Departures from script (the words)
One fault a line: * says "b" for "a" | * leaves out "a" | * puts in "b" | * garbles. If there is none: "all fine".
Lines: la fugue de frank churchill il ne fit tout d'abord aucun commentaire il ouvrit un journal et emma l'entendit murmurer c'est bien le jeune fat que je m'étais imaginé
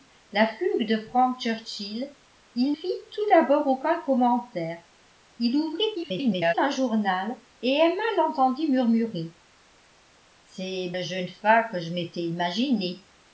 * leaves out "ne"
* garbles
* leaves out "bien"